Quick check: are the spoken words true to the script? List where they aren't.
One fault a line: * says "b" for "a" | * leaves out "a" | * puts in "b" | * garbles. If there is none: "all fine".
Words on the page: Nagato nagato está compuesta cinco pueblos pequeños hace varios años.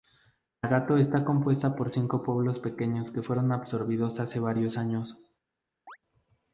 * leaves out "nagato"
* puts in "por"
* puts in "que fueron absorbidos"